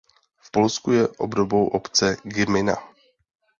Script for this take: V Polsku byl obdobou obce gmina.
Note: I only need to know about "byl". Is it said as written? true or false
false